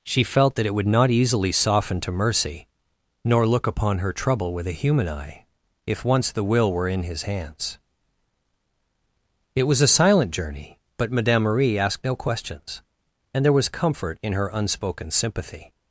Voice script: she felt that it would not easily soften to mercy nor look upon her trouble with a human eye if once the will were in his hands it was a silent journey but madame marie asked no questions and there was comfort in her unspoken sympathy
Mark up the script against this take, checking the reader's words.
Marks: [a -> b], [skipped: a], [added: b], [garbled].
she felt that it would not easily soften to mercy nor look upon her trouble with a human eye if once the will were in his hands it was a silent journey but madame marie asked no questions and there was comfort in her unspoken sympathy